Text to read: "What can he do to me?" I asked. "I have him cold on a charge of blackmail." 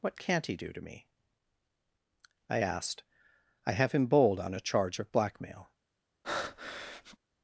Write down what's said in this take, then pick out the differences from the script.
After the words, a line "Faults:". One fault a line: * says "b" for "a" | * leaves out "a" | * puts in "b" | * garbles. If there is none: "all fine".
"What can't he do to me?" I asked. "I have him bold on a charge of blackmail."
Faults:
* says "can't" for "can"
* says "bold" for "cold"